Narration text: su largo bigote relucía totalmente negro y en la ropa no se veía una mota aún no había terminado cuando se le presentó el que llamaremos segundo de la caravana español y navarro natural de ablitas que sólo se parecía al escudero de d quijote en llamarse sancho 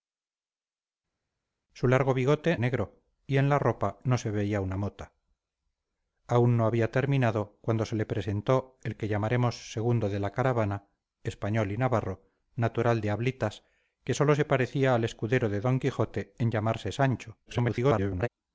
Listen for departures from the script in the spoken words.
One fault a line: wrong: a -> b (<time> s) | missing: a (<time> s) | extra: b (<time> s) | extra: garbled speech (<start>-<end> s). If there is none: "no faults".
missing: relucía totalmente (2.6 s)
extra: garbled speech (17.5-18.3 s)